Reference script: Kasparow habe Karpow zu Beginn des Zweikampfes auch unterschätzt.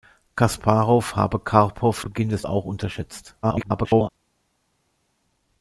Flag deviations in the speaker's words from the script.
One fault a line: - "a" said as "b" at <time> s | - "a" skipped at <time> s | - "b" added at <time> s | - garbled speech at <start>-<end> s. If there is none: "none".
- "zu" skipped at 2.1 s
- "Zweikampfes" skipped at 2.5 s
- garbled speech at 3.4-4.1 s